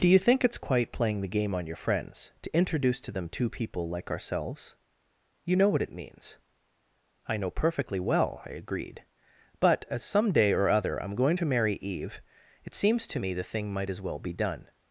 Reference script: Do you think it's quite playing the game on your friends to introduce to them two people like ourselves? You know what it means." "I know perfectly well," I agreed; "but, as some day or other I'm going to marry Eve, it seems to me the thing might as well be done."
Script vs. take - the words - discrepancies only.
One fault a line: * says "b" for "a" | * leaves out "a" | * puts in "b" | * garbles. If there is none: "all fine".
all fine